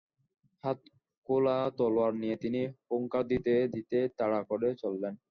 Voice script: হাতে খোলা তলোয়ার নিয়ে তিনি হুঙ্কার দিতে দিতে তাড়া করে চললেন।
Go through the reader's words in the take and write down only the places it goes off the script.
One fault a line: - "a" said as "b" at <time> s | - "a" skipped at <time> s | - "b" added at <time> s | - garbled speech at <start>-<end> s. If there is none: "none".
none